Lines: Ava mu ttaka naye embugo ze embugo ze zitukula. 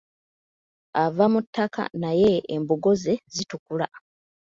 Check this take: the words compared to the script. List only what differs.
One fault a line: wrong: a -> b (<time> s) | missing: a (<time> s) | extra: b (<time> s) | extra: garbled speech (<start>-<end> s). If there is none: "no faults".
missing: embugo ze (3.1 s)